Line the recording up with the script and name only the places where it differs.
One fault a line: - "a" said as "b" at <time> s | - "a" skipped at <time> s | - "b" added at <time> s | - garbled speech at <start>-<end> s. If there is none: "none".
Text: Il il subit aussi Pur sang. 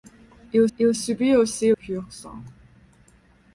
none